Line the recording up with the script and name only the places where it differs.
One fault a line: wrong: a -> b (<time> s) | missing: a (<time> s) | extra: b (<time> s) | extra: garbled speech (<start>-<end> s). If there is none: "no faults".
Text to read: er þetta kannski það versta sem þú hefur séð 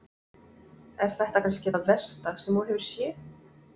no faults